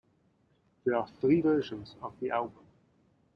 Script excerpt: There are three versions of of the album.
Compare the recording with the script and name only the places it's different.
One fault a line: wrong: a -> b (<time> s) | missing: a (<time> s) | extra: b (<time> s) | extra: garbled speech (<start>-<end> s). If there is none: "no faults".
missing: of (2.2 s)